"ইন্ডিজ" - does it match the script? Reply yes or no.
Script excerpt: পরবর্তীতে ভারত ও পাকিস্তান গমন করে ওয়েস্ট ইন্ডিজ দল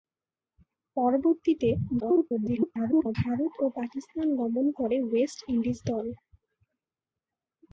yes